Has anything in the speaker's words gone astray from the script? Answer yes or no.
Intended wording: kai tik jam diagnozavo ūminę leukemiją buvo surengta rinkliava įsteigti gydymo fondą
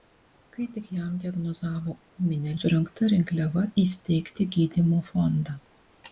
yes